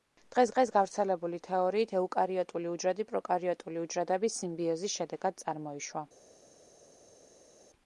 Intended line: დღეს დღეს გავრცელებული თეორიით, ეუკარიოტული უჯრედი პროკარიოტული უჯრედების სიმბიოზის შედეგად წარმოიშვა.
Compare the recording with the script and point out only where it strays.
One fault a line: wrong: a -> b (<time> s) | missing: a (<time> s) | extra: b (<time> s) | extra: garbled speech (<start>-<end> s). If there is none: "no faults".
no faults